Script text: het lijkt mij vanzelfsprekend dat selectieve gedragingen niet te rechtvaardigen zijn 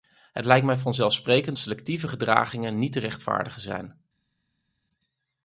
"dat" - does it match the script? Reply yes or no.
no